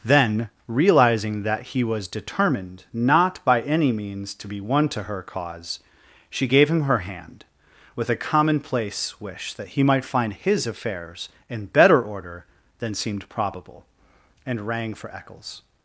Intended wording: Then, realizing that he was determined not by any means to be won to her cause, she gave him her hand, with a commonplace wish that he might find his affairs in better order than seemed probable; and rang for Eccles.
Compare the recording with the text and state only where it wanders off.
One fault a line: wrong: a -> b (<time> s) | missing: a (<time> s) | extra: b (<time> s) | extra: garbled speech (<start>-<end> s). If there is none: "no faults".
no faults